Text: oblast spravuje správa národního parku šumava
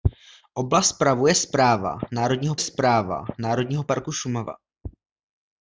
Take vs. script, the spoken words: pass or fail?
fail